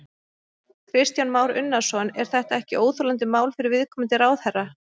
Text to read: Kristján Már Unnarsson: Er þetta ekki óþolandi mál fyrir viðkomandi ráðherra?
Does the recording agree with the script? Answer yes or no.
yes